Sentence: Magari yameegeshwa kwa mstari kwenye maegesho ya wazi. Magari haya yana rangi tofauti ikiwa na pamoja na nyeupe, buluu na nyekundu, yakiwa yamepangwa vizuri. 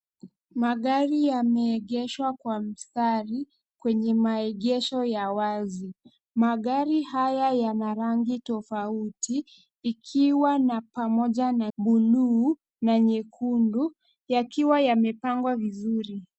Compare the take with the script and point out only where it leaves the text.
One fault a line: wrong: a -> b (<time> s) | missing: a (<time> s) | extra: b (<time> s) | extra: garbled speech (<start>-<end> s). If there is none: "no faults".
missing: nyeupe (11.7 s)